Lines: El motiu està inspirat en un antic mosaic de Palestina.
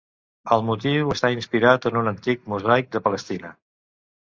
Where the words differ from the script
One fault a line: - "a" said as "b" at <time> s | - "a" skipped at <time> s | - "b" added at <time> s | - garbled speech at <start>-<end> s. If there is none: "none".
none